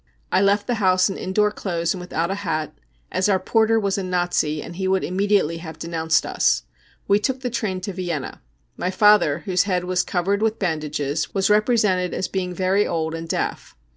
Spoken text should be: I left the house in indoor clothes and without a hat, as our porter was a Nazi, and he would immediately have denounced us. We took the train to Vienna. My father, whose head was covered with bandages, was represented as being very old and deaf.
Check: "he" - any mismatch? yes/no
no